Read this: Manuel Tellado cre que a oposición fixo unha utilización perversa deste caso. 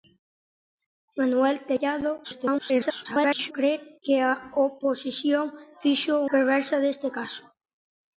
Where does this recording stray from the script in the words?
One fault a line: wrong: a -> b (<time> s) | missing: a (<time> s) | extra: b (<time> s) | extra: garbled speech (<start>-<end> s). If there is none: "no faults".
extra: garbled speech (2.2-3.5 s)
missing: unha utilización (6.2 s)